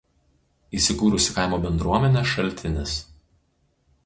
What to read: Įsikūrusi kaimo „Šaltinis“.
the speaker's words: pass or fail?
fail